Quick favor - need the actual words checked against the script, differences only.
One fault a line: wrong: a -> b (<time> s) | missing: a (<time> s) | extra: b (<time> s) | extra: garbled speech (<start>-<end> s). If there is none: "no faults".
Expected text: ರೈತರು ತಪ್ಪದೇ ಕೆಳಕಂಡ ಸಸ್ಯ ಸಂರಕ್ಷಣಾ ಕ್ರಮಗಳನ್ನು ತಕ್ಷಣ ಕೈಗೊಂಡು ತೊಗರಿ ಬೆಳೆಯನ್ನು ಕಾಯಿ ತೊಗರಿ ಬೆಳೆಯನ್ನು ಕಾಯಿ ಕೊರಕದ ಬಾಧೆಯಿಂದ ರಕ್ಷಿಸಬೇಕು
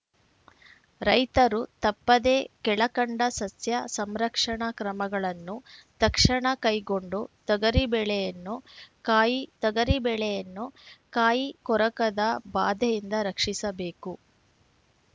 no faults